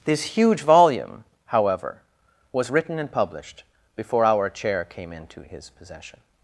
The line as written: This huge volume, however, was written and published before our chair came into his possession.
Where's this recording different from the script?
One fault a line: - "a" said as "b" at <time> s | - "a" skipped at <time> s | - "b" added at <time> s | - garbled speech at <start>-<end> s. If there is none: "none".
none